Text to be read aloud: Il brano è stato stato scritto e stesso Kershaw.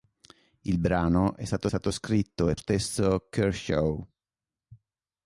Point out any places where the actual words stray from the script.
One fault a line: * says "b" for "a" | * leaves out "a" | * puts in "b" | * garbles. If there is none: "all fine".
all fine